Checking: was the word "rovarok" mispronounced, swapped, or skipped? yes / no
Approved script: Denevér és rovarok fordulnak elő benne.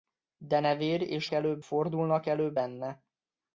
yes